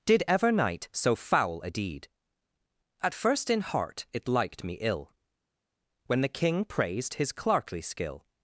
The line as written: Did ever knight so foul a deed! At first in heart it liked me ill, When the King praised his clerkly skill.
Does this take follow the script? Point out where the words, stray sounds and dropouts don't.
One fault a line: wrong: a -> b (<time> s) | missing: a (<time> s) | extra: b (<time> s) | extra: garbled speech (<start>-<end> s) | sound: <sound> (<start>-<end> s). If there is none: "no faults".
no faults